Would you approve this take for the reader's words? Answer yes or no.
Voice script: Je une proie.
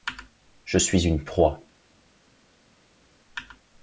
no